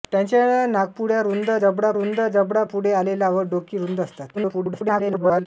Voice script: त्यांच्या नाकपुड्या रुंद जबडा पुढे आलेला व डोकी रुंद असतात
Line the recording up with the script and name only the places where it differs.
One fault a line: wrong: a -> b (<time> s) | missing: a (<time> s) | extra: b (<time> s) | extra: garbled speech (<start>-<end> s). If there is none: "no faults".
extra: रुंद जबडा (1.9 s)
extra: garbled speech (4.3-5.5 s)